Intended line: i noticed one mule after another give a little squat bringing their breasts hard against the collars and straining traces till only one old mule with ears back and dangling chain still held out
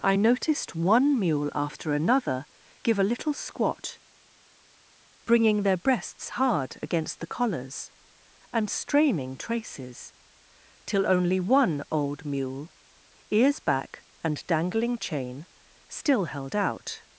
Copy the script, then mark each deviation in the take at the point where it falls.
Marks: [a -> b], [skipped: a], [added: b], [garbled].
i noticed one mule after another give a little squat bringing their breasts hard against the collars and straining traces till only one old mule [skipped: with] ears back and dangling chain still held out